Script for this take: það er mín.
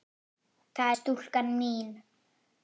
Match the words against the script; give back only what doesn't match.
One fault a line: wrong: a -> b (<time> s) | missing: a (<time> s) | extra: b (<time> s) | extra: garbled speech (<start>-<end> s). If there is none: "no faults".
extra: stúlkan (1.0 s)